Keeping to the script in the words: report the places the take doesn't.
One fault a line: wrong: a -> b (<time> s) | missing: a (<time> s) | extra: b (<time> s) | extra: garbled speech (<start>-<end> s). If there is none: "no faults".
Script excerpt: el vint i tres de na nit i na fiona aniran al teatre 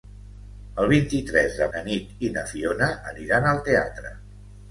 no faults